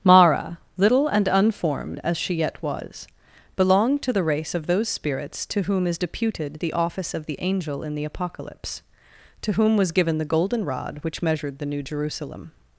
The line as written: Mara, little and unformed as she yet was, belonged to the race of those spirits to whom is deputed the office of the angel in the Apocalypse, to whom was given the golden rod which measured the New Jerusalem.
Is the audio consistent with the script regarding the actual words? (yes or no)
yes